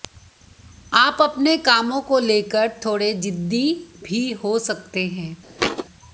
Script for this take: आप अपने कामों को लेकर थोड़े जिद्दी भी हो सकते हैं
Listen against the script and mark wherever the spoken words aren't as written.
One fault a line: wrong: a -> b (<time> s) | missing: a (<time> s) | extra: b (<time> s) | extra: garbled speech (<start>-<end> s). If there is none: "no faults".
no faults